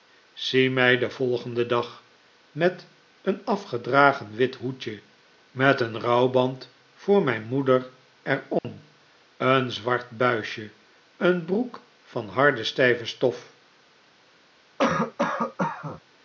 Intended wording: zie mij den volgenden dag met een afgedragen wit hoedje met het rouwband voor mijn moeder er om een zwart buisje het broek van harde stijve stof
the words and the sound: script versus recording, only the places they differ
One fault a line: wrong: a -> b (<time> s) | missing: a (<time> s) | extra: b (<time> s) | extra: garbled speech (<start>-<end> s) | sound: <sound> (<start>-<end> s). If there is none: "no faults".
wrong: het -> een (5.8 s)
sound: dropout (8.6-8.6 s)
wrong: het -> een (11.2 s)
sound: cough (14.8-16.0 s)